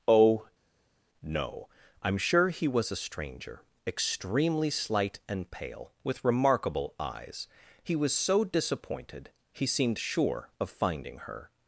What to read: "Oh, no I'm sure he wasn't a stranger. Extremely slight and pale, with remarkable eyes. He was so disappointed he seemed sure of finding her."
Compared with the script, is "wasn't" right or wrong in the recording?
wrong